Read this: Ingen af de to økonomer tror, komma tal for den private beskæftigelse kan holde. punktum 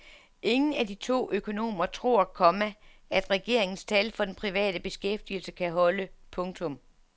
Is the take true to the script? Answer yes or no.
no